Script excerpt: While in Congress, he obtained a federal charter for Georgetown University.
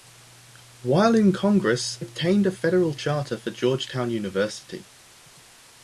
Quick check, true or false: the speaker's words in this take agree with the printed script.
false